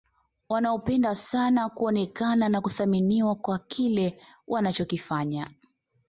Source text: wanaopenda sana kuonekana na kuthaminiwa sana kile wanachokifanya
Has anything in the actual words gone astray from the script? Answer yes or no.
yes